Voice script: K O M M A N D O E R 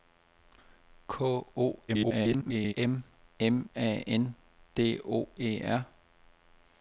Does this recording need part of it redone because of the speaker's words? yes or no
yes